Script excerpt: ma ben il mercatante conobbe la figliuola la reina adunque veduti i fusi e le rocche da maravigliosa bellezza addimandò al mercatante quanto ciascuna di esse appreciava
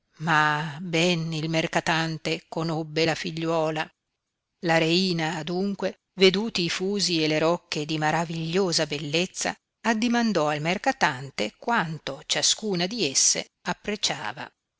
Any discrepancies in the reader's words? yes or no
yes